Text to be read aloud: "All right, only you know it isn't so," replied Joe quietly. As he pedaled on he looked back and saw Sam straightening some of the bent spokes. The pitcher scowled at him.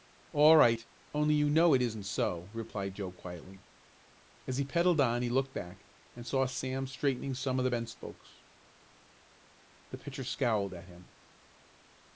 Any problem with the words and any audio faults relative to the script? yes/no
no